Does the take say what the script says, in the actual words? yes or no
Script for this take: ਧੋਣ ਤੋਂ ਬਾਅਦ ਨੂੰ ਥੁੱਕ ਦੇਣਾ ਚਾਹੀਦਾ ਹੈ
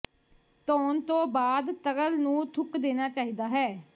no